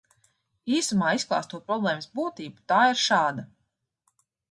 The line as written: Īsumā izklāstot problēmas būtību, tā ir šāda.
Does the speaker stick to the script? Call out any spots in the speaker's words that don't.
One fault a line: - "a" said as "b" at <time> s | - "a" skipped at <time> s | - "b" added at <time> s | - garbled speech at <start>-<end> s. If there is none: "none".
none